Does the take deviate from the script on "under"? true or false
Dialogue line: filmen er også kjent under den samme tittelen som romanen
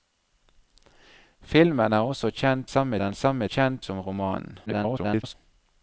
true